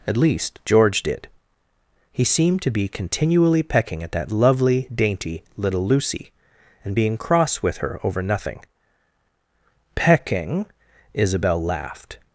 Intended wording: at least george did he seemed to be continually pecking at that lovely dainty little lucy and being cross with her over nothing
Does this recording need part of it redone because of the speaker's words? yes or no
yes